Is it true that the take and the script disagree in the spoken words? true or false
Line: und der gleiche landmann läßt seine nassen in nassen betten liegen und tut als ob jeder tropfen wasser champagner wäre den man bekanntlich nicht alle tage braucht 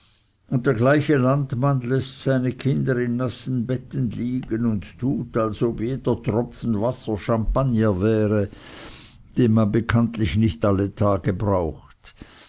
true